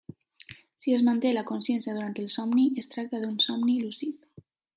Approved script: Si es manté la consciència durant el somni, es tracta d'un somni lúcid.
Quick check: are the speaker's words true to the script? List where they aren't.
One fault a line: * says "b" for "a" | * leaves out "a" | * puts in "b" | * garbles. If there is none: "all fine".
all fine